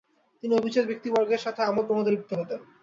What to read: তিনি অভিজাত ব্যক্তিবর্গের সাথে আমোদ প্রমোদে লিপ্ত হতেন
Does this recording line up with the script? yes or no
yes